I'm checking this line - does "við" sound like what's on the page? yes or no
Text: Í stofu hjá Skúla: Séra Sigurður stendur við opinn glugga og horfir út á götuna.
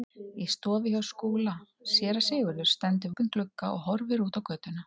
no